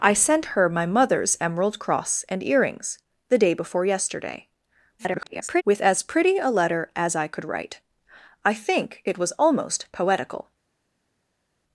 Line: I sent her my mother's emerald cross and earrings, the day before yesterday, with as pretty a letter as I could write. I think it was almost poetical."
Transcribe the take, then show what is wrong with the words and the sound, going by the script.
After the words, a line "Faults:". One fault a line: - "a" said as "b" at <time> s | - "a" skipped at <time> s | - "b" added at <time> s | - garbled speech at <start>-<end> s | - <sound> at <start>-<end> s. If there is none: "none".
I sent her my mother's emerald cross and earrings, the day before yesterday, [garbled] with as pretty a letter as I could write. I think it was almost poetical."
Faults:
- garbled speech at 5.0-5.6 s